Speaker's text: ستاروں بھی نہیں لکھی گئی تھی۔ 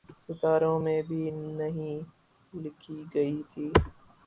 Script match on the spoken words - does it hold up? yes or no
no